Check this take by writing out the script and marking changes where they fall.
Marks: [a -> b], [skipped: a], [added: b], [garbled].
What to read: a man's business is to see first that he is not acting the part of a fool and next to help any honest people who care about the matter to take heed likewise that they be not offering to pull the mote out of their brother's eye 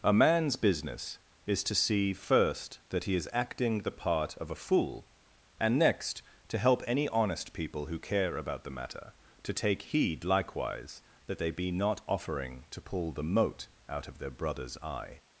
a man's business is to see first that he is [skipped: not] acting the part of a fool and next to help any honest people who care about the matter to take heed likewise that they be not offering to pull the mote out of their brother's eye